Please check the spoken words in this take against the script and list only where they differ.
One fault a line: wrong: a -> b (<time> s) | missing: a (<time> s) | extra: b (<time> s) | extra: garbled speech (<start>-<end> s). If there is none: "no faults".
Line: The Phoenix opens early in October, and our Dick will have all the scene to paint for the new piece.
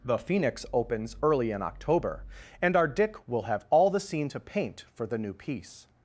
no faults